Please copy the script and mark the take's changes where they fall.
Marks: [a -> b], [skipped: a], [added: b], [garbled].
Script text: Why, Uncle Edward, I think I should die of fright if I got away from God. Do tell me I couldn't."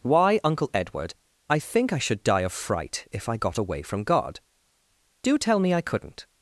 Why, Uncle Edward, I think I should die of fright if I got away from God. Do tell me I couldn't."